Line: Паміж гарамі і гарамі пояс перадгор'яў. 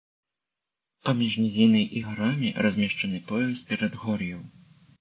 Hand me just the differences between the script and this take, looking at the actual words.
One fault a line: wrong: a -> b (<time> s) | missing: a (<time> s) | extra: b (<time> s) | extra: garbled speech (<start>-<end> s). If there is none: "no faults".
wrong: гарамі -> нізінай (1.4 s)
extra: размешчаны (2.7 s)